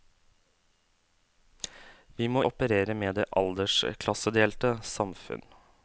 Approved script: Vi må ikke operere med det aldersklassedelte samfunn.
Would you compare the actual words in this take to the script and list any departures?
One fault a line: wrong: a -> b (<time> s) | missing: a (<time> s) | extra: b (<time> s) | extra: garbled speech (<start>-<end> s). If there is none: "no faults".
missing: ikke (2.4 s)